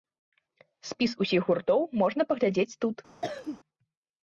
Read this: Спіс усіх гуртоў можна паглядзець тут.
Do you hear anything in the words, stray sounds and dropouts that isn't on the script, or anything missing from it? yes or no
yes